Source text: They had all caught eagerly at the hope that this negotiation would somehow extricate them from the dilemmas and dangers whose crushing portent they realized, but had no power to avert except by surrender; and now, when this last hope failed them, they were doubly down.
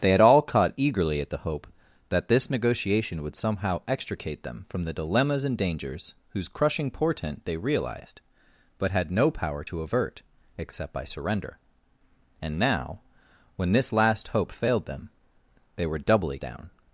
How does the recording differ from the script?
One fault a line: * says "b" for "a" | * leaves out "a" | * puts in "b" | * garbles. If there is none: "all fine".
all fine